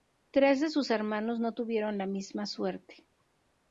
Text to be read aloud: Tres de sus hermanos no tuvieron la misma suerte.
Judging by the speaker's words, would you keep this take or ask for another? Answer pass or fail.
pass